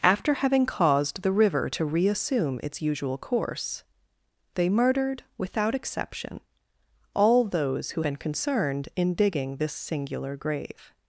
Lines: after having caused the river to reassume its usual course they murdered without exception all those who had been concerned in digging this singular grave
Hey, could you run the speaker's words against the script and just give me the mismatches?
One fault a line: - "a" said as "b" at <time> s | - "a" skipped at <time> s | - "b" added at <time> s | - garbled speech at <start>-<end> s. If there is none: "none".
- "had" skipped at 8.0 s